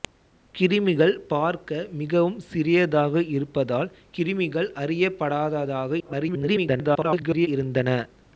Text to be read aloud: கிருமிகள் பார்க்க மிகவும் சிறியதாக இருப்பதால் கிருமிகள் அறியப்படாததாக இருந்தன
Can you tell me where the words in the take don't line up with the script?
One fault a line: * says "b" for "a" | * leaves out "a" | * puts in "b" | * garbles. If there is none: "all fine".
* garbles